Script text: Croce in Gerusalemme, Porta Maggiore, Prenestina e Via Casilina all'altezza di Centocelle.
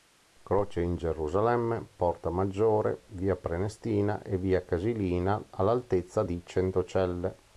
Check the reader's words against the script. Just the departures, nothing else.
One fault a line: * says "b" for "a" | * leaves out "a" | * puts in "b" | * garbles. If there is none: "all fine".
* puts in "Via"